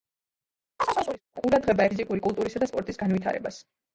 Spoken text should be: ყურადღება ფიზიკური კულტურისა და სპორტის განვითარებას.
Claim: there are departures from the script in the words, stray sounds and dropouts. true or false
true